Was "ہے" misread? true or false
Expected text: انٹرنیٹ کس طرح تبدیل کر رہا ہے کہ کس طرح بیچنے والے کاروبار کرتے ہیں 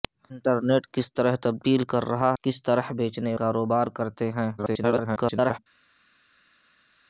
true